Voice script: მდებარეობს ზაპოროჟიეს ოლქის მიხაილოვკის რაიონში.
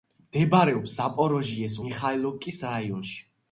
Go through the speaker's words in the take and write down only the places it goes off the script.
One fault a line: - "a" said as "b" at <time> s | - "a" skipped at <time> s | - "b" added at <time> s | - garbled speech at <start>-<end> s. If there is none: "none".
- "ოლქის" skipped at 1.8 s